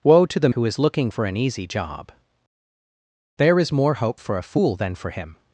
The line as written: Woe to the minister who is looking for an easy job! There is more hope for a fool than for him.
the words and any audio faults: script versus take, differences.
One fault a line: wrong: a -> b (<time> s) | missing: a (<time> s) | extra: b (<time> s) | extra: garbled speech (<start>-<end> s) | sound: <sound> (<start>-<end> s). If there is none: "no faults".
missing: minister (0.5 s)